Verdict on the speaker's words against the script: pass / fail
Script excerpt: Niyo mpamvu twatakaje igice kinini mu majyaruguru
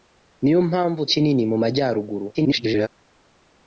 fail